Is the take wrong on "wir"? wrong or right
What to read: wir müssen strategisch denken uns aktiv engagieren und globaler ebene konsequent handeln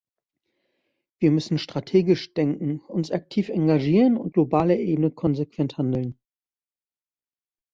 right